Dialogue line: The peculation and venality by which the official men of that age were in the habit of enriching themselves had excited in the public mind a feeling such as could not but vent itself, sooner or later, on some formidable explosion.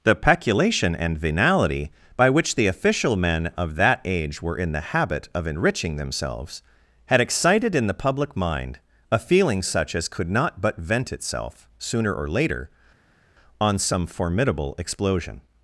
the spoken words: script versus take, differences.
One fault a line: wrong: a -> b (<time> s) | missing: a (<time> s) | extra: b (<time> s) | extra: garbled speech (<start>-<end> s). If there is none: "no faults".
no faults